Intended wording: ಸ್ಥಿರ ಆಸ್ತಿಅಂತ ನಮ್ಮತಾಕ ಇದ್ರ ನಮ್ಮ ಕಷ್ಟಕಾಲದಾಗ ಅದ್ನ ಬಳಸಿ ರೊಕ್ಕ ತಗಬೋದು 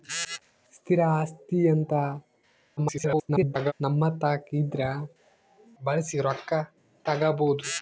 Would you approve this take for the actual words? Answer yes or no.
no